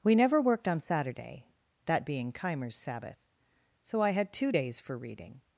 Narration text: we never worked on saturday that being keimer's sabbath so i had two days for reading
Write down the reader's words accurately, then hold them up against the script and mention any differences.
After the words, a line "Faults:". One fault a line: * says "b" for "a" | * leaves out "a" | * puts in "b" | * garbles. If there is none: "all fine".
we never worked on saturday that being keimer's sabbath so i had two days for reading
Faults:
all fine